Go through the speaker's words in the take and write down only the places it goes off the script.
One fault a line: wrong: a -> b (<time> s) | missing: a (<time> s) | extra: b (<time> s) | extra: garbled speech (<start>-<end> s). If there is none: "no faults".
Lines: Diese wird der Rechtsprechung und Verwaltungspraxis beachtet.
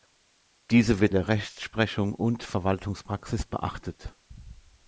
no faults